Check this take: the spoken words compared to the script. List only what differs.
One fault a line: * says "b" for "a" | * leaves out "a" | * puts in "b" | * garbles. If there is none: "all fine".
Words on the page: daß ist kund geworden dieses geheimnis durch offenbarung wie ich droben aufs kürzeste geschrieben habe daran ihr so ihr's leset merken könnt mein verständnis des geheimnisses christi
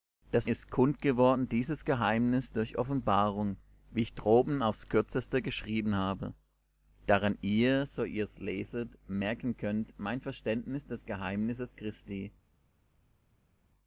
all fine